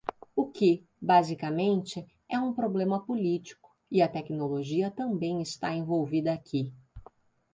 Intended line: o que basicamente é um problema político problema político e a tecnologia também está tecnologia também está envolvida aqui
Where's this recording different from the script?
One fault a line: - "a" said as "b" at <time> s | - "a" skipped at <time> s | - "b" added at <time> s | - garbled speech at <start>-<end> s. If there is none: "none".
- "problema político" skipped at 3.7 s
- "tecnologia também está" skipped at 5.8 s